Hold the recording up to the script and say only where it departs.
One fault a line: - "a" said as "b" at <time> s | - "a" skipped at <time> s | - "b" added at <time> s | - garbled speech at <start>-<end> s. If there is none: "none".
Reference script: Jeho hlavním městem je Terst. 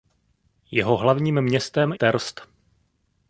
- "je" skipped at 1.9 s